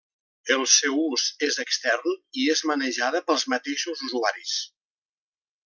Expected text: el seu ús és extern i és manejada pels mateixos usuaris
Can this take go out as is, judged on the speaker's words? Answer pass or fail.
pass